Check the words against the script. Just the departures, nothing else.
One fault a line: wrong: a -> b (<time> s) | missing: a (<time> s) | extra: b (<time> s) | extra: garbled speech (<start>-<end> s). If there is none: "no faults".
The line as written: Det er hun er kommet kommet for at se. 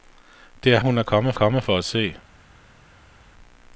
no faults